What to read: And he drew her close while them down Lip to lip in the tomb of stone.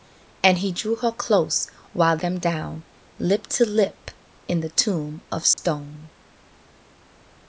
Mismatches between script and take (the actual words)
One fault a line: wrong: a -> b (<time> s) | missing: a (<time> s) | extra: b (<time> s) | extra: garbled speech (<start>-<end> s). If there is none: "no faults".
no faults